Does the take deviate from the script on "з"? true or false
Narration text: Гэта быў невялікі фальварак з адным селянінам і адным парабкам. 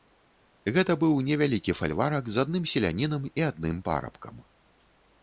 false